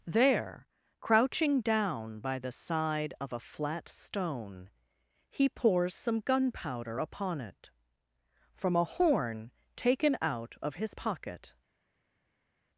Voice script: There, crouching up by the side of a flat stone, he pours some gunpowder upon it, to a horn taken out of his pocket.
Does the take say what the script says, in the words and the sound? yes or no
no